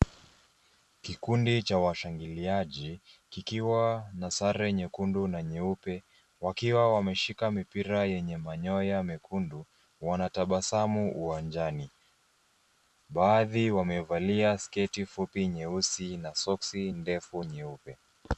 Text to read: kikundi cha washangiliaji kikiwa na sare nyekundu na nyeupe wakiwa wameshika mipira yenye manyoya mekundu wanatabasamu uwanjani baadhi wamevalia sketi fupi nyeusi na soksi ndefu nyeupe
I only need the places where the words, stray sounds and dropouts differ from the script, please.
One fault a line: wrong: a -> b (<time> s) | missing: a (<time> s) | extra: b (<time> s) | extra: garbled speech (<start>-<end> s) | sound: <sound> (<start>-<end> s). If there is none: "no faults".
no faults